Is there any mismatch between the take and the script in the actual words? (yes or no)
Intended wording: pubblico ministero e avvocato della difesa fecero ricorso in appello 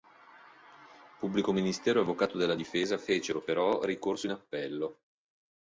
yes